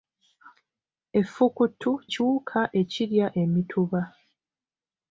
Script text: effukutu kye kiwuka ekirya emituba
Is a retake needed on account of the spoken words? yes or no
yes